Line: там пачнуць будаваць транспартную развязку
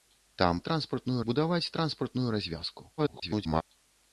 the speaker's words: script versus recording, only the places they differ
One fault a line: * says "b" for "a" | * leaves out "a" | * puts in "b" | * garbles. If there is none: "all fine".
* says "транспартную" for "пачнуць"
* garbles